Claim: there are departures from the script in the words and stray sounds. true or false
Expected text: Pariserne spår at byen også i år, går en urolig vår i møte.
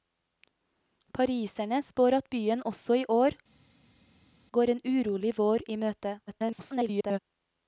true